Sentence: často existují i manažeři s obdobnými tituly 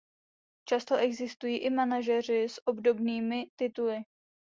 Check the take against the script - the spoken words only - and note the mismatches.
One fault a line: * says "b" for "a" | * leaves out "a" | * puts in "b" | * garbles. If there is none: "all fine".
all fine